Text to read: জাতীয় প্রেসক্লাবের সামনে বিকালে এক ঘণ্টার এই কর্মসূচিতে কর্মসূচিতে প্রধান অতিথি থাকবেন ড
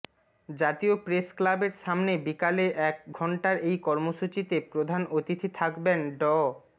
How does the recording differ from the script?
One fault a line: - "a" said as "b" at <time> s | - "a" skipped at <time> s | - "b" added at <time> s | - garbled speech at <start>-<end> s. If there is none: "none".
- "কর্মসূচিতে" skipped at 4.5 s